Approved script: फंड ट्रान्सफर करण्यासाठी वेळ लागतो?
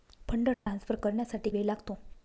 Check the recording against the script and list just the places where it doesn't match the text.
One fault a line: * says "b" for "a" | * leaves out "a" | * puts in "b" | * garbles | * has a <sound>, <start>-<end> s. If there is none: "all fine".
* has a dropout, 0.5-0.7 s